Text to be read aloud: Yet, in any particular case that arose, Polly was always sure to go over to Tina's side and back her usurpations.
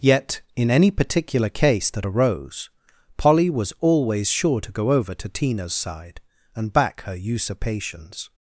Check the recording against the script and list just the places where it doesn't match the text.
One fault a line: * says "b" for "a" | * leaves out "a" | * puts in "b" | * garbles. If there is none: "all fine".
all fine